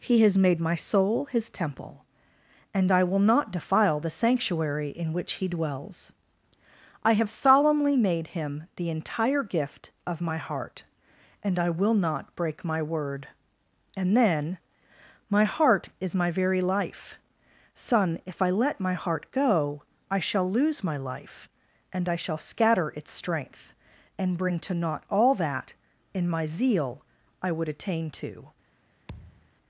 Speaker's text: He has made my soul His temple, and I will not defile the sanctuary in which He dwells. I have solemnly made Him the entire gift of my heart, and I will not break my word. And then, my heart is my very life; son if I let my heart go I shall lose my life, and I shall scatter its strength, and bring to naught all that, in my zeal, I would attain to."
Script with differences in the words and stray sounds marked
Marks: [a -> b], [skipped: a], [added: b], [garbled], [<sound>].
He has made my soul His temple, and I will not defile the sanctuary in which He dwells. I have solemnly made Him the entire gift of my heart, and I will not break my word. And then, my heart is my very life; son if I let my heart go I shall lose my life, and I shall scatter its strength, and bring to naught all that, in my zeal, I would attain to." [thud]